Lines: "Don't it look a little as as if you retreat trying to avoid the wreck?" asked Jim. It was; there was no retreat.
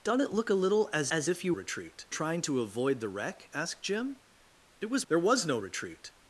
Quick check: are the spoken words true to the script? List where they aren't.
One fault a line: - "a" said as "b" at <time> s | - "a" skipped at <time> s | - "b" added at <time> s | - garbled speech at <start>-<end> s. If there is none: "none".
none